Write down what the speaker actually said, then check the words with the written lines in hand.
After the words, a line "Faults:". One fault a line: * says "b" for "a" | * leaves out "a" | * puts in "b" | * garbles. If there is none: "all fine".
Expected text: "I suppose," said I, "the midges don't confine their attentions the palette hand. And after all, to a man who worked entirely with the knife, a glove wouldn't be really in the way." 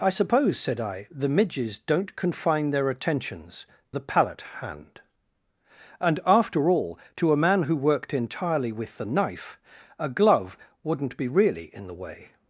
"I suppose," said I, "the midges don't confine their attentions the palette hand. And after all, to a man who worked entirely with the knife, a glove wouldn't be really in the way."
Faults:
all fine